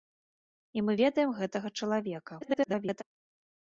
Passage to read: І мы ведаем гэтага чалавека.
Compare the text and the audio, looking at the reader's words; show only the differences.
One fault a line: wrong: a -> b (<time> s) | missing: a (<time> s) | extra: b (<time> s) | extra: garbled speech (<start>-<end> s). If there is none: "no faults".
extra: garbled speech (2.4-3.0 s)